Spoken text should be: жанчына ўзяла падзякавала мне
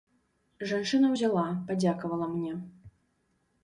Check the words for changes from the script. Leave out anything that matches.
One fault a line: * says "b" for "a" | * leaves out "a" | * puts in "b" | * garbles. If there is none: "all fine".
all fine